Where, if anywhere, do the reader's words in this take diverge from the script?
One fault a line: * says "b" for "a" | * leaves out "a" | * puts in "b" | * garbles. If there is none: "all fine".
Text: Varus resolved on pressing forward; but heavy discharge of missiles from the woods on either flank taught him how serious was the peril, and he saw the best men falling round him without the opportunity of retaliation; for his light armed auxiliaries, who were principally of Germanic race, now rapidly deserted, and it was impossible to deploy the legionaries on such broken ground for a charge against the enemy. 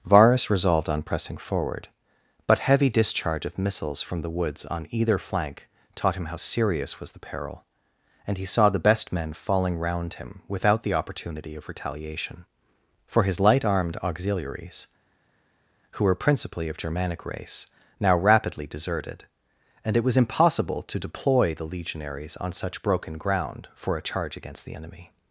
all fine